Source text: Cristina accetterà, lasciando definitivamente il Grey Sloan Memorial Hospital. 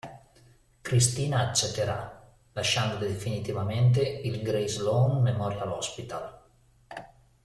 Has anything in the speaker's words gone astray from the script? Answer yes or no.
no